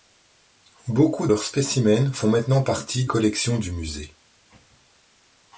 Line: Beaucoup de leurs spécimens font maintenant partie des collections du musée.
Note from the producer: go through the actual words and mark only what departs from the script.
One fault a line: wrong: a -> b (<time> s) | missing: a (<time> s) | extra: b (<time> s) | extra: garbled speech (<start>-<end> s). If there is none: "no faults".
missing: de (1.3 s)
missing: des (3.1 s)